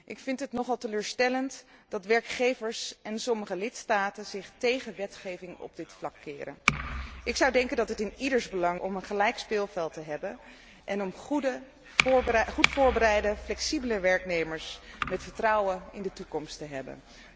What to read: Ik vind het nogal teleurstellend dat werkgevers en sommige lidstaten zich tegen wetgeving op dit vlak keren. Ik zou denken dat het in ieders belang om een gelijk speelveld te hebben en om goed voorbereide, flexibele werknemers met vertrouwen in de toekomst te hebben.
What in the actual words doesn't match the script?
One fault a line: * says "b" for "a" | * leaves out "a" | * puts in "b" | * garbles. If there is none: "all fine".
all fine